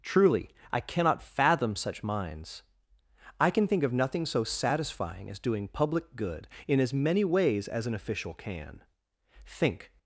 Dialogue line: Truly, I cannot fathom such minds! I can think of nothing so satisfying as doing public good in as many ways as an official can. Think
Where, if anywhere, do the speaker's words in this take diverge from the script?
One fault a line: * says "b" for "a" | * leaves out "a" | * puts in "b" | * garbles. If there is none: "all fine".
all fine